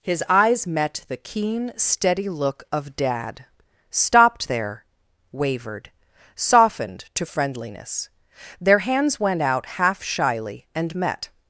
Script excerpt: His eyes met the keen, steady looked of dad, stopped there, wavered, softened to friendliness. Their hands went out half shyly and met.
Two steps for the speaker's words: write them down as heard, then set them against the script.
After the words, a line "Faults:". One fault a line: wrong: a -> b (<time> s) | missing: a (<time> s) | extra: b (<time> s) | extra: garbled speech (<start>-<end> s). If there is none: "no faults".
His eyes met the keen, steady look of dad, stopped there, wavered, softened to friendliness. Their hands went out half shyly and met.
Faults:
wrong: looked -> look (2.3 s)